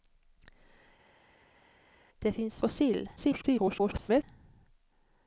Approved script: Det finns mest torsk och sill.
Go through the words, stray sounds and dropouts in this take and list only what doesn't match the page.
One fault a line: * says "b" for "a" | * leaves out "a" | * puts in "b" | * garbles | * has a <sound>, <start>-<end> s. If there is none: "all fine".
* leaves out "mest torsk"
* garbles